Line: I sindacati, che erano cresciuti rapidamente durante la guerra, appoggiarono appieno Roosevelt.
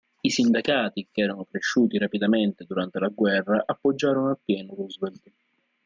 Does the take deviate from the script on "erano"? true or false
false